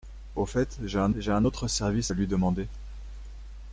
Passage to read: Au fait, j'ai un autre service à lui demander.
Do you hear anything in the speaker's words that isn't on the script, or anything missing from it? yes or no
yes